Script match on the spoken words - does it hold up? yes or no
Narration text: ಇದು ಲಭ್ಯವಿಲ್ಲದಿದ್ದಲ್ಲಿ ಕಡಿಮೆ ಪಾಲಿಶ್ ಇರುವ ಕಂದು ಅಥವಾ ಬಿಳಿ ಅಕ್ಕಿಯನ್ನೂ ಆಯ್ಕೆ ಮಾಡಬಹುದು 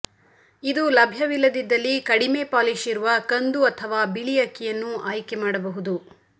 yes